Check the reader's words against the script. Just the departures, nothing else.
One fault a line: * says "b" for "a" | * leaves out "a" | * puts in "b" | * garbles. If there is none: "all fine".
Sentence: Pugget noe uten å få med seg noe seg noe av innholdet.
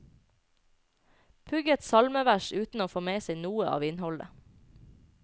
* says "salmevers" for "noe"
* leaves out "seg noe"